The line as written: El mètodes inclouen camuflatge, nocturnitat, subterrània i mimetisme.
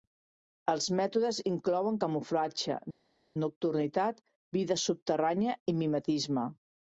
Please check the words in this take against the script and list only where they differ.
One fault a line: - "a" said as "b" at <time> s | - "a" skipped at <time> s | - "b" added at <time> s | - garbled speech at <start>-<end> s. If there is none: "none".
- "El" said as "Els" at 0.7 s
- "vida" added at 4.6 s